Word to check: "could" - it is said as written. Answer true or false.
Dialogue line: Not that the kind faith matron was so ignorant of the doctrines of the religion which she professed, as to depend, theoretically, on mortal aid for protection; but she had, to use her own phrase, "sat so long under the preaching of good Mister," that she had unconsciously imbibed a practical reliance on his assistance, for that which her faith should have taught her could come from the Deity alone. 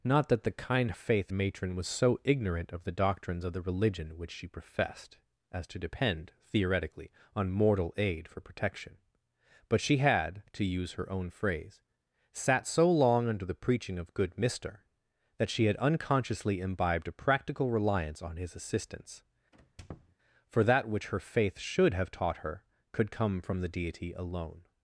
true